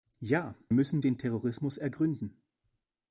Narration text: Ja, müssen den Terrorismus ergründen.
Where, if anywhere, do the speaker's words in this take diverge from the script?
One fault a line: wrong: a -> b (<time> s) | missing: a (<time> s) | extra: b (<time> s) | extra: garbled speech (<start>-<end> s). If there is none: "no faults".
no faults